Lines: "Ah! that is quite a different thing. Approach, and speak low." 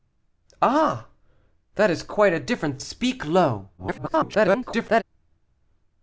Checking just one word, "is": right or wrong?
right